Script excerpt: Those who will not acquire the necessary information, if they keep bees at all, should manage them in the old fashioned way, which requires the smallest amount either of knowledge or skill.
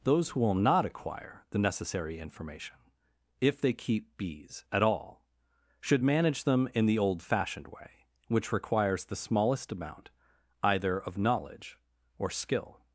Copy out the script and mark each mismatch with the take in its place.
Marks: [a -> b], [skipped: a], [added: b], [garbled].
Those who will not acquire the necessary information, if they keep bees at all, should manage them in the old fashioned way, which requires the smallest amount either of knowledge or skill.